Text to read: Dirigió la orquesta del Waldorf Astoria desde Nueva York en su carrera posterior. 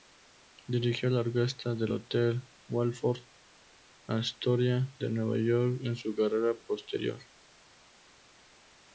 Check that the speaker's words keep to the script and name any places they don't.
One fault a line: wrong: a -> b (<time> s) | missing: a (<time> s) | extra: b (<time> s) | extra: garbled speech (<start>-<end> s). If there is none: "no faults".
extra: hotel (1.9 s)
wrong: desde -> de (5.0 s)